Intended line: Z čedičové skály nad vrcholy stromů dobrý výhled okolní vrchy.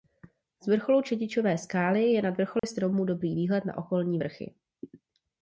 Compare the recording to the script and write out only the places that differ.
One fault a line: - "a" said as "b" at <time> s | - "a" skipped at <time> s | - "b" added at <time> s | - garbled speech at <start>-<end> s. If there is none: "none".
- "vrcholu" added at 0.7 s
- "je" added at 2.0 s
- "na" added at 3.6 s